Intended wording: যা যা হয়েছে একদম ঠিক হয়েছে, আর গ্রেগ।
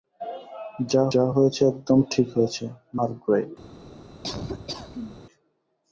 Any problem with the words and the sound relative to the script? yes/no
yes